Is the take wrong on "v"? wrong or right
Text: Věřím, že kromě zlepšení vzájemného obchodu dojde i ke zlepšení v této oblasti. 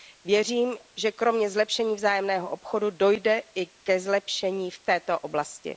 right